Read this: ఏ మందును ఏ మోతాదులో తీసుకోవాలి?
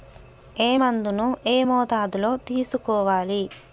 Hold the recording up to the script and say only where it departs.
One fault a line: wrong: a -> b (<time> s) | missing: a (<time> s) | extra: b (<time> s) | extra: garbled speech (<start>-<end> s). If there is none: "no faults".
no faults